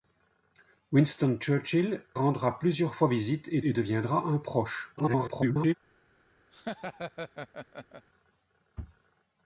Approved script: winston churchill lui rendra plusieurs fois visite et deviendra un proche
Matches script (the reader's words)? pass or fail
fail